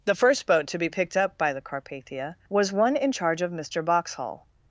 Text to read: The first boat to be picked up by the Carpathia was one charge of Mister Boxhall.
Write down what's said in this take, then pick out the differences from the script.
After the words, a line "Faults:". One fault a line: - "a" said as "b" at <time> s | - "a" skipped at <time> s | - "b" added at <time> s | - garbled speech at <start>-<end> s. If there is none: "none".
The first boat to be picked up by the Carpathia was one in charge of Mister Boxhall.
Faults:
- "in" added at 3.0 s